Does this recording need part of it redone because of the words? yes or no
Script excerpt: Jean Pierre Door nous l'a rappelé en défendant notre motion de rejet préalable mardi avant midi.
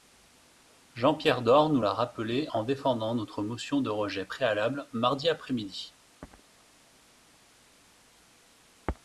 yes